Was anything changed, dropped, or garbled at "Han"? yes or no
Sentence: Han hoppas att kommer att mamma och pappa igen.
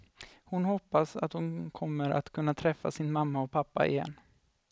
yes